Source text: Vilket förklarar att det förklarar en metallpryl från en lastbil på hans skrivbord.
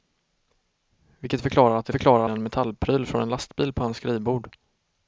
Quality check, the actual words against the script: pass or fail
pass